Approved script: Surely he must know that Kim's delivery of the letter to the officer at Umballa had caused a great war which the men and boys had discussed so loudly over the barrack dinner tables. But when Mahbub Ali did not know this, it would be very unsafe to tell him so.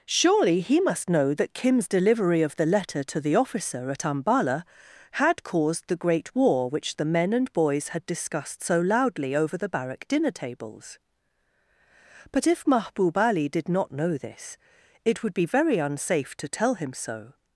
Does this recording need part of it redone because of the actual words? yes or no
yes